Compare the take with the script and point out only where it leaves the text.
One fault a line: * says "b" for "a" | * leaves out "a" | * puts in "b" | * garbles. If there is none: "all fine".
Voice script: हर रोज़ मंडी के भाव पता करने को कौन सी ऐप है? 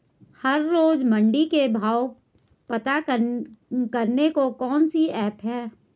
all fine